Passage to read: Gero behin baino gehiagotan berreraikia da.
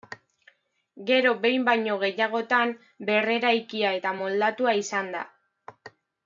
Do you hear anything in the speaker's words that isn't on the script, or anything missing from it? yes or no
yes